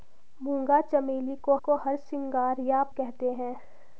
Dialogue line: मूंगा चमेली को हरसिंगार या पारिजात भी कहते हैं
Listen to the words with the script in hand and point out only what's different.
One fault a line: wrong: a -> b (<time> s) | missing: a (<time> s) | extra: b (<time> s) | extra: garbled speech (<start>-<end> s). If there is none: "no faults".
extra: को (1.6 s)
missing: पारिजात भी (2.8 s)